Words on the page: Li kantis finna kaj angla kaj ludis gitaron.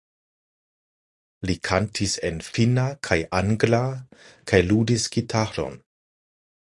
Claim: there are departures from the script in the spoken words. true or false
true